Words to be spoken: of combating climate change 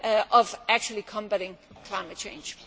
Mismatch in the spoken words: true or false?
true